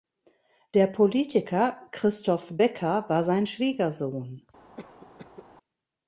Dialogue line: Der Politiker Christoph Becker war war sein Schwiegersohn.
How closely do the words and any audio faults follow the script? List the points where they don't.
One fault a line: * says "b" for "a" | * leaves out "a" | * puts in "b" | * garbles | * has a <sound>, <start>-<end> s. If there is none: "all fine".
* leaves out "war"
* has a cough, 4.8-5.5 s